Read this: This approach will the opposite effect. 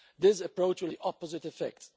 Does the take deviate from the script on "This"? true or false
false